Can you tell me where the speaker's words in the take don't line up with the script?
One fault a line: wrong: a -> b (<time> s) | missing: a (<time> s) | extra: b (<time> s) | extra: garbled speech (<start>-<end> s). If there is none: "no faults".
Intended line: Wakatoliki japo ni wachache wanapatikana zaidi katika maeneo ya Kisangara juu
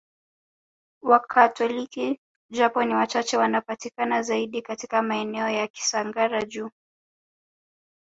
no faults